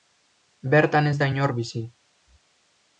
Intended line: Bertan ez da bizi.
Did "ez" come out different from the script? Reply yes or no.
no